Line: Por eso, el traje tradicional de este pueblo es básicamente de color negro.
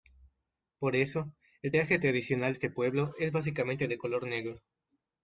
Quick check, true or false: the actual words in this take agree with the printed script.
false